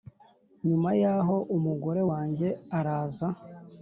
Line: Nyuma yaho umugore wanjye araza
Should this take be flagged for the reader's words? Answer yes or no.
no